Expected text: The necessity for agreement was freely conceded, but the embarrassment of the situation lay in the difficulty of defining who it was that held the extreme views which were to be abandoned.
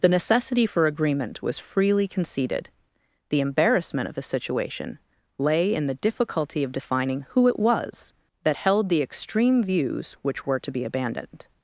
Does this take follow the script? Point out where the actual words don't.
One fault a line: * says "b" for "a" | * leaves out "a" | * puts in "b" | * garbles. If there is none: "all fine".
* leaves out "but"